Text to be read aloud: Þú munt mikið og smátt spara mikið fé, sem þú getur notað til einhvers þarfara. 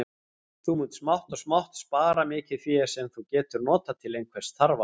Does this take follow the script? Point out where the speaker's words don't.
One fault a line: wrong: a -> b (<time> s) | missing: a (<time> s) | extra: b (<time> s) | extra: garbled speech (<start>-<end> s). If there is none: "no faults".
wrong: mikið -> smátt (1.0 s)